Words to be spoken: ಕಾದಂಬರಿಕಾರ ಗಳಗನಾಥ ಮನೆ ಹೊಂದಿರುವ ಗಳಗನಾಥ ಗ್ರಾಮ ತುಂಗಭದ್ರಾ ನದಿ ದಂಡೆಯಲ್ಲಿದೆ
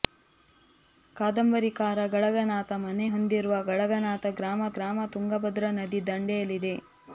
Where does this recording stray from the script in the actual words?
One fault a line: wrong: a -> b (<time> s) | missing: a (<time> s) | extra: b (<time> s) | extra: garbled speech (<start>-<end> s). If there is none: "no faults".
extra: ಗ್ರಾಮ (4.8 s)